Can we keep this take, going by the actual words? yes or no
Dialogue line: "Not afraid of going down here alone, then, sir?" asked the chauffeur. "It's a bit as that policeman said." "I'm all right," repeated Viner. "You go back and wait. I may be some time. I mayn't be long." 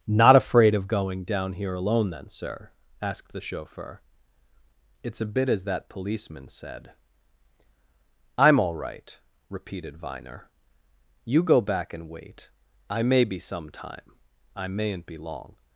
yes